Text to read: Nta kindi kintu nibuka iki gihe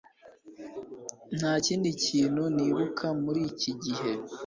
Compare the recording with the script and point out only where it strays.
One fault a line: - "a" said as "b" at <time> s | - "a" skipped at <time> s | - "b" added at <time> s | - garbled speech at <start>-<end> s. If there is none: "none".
- "muri" added at 3.2 s